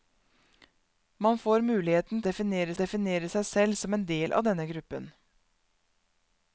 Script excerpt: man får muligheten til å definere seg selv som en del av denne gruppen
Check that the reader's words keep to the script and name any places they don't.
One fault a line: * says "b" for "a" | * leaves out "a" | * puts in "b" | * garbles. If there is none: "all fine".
* says "definere" for "til"